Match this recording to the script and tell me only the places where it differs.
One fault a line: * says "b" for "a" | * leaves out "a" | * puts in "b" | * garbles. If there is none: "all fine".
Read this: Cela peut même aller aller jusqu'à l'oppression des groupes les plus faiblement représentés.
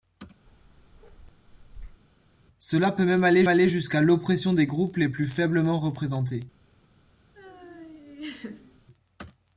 all fine